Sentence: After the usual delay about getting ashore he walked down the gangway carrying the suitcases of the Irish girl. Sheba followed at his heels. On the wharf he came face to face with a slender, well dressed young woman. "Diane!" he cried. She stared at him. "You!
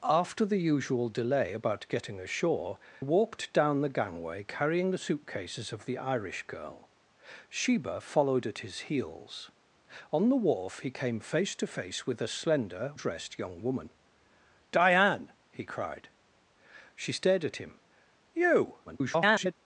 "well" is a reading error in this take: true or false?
true